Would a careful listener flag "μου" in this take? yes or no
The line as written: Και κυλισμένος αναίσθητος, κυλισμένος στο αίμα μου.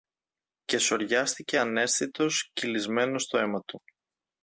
yes